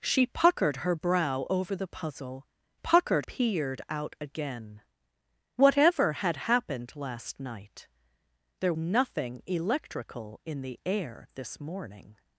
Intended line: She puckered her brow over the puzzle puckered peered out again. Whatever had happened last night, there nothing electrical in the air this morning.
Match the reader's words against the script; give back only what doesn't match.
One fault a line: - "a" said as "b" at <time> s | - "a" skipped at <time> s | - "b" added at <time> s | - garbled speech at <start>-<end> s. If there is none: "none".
none